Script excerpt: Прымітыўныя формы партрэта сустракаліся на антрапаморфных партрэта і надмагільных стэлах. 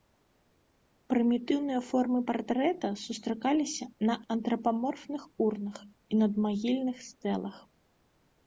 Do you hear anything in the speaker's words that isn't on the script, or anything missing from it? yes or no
yes